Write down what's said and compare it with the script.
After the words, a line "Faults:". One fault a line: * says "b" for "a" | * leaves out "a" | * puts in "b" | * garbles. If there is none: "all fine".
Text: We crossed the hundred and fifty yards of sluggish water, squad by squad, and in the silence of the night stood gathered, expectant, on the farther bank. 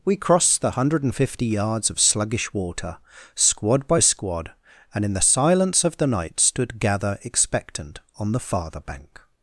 We crossed the hundred and fifty yards of sluggish water, squad by squad, and in the silence of the night stood gather, expectant, on the farther bank.
Faults:
* says "gather" for "gathered"